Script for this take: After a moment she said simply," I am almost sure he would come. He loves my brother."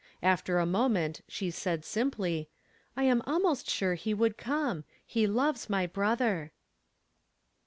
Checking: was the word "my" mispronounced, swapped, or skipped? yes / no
no